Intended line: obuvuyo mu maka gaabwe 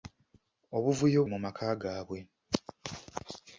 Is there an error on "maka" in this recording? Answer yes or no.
no